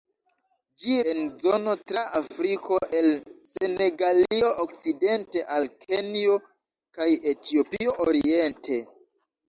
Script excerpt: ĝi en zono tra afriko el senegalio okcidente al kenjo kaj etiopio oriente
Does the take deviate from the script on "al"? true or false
false